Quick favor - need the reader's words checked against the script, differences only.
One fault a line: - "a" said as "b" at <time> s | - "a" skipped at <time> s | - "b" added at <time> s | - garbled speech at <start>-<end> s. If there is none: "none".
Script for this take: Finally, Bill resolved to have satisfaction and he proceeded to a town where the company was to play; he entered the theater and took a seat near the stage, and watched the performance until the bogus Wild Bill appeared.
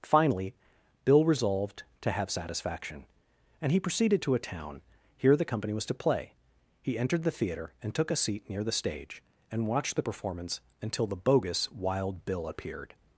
- "where" said as "here" at 5.2 s